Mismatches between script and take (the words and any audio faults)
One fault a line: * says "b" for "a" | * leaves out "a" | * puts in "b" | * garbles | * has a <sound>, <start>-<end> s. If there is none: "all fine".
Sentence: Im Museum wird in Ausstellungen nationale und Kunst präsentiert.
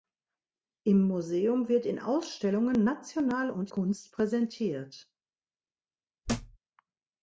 * has a thud, 6.2-6.6 s